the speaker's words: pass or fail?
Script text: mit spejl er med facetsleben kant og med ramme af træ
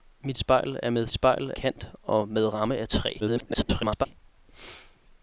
fail